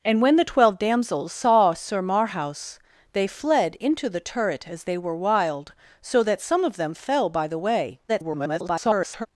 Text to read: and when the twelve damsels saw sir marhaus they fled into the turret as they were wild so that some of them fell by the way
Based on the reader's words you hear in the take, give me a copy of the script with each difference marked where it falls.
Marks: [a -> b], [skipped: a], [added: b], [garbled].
and when the twelve damsels saw sir marhaus they fled into the turret as they were wild so that some of them fell by the way [garbled]